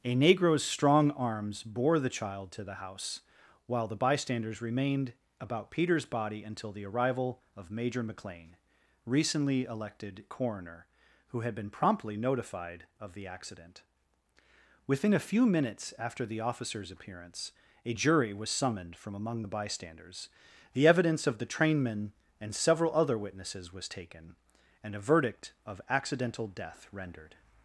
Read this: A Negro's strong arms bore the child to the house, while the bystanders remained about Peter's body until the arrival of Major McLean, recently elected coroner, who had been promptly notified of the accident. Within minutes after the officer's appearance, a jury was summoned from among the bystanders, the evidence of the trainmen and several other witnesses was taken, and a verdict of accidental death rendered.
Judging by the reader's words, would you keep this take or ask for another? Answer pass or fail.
fail